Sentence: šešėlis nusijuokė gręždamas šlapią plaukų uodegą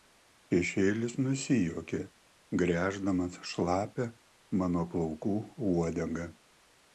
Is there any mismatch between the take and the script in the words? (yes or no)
yes